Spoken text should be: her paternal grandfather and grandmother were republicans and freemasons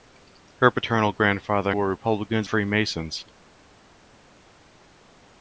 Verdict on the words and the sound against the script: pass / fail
fail